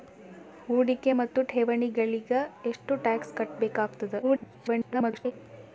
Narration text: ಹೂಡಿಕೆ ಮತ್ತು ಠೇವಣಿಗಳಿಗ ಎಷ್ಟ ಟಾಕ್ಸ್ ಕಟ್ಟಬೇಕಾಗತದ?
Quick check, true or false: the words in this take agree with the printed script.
false